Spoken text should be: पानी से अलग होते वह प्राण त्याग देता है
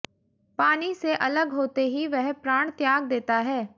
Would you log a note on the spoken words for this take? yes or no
yes